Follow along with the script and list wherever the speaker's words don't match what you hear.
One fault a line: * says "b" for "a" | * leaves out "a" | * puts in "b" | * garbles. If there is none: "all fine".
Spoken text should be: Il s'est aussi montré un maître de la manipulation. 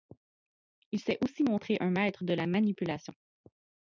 all fine